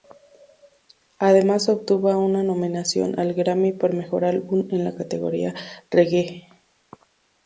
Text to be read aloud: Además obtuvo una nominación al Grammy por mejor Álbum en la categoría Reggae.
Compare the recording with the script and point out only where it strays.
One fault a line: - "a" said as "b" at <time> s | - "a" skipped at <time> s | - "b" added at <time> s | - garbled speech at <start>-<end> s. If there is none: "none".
none